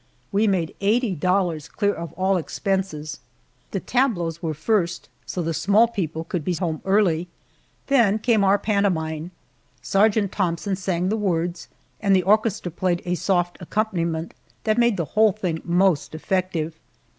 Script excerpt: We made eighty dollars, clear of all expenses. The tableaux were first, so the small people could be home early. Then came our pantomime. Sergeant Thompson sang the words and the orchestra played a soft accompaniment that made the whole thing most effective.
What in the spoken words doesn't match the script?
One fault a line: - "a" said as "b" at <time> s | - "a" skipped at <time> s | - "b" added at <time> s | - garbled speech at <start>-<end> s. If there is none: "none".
none